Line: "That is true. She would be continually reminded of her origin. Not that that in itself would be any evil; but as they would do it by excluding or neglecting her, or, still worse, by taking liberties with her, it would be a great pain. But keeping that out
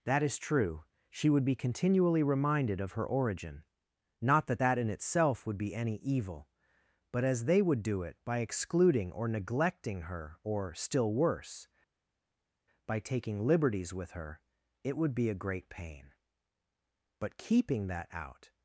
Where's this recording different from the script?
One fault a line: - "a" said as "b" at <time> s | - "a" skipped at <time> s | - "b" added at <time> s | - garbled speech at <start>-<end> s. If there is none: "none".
none